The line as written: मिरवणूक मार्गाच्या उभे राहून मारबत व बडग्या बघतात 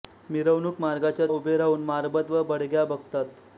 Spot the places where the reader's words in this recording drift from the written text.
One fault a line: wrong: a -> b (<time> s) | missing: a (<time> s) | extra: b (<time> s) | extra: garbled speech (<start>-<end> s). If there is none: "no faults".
no faults